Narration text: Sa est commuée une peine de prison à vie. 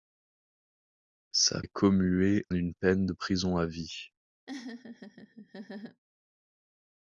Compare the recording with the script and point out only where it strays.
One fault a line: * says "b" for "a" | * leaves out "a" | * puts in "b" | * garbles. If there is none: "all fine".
all fine